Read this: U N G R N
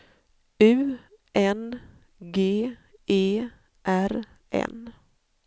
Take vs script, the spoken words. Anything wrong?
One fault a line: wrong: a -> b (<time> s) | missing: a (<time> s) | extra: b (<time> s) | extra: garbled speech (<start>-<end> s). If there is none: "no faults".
extra: E (3.1 s)